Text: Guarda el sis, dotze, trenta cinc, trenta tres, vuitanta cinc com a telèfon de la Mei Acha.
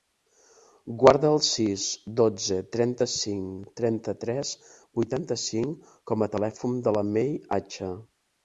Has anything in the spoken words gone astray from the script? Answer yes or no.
no